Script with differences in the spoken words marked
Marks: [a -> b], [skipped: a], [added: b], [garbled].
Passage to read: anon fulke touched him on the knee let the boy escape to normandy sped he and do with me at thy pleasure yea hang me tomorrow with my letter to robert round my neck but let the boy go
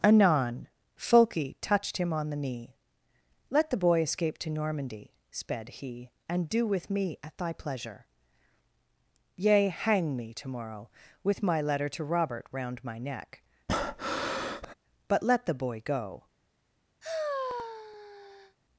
anon fulke touched him on the knee let the boy escape to normandy sped he and do with me at thy pleasure yea hang me tomorrow with my letter to robert round my neck but let the boy go